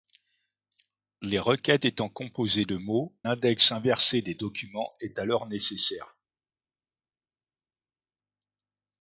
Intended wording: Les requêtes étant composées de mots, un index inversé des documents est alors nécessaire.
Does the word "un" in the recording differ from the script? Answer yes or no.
yes